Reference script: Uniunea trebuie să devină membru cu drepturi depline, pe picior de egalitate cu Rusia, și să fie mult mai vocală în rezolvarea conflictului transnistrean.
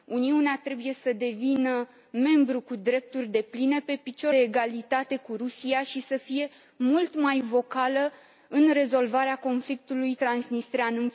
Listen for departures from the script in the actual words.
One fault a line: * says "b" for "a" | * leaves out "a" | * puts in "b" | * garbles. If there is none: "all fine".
* leaves out "de"